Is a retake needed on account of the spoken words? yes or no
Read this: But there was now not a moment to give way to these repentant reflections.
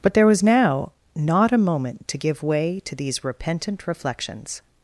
no